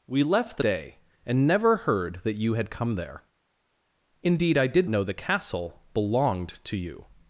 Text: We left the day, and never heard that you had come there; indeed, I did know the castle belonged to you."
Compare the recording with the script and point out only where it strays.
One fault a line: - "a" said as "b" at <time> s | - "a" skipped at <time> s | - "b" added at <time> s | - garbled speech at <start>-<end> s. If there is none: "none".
none